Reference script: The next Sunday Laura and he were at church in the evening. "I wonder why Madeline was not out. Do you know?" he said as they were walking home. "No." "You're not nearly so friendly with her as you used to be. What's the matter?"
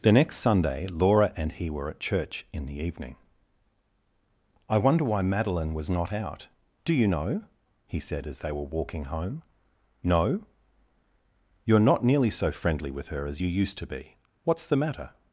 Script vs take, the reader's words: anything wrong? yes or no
no